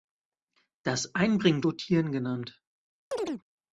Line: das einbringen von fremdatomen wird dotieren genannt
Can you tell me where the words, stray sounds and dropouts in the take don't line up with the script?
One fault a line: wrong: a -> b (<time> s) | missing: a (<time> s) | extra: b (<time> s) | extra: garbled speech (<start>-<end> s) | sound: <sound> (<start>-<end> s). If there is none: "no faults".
missing: von fremdatomen wird (1.6 s)
sound: chirp (3.1-3.4 s)